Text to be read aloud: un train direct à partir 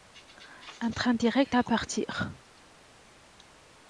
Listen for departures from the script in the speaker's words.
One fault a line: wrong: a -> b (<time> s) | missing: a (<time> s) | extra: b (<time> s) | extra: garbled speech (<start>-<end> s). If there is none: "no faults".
no faults